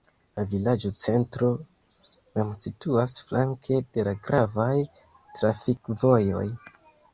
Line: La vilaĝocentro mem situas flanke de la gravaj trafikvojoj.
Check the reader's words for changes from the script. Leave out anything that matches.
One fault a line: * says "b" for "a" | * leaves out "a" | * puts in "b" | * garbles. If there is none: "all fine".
all fine